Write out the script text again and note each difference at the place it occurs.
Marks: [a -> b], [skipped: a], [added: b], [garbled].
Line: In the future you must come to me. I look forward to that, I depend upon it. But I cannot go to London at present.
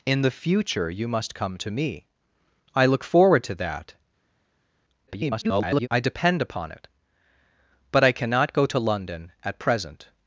In the future you must come to me. I look forward to that, [garbled] I depend upon it. But I cannot go to London at present.